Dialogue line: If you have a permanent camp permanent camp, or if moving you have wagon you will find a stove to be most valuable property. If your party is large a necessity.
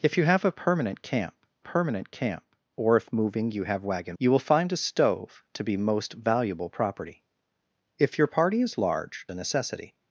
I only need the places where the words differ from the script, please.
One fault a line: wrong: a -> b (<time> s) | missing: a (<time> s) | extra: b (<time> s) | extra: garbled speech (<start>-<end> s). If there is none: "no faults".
no faults